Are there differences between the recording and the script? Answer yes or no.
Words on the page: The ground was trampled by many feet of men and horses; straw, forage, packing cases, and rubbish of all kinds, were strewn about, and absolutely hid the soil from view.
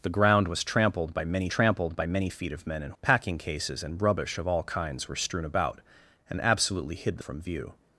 yes